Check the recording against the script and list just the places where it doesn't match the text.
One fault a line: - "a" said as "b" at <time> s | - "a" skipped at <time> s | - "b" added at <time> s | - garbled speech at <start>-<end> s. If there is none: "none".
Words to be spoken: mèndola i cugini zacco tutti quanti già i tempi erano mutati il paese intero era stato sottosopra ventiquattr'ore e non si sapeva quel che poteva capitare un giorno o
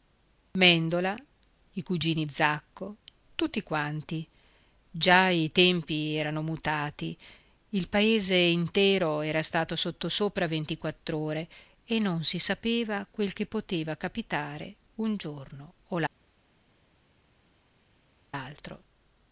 none